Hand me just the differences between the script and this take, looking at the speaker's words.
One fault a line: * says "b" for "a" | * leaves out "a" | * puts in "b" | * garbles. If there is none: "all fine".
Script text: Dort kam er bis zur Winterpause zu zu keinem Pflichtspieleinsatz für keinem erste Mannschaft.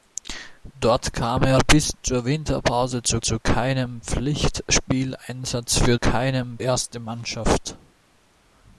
all fine